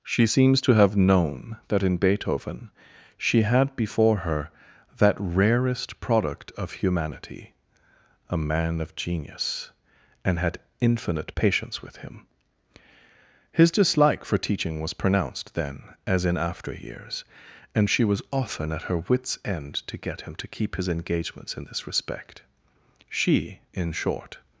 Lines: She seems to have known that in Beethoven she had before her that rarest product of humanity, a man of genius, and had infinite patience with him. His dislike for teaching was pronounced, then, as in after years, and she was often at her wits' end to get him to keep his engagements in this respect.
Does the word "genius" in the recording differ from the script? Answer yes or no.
no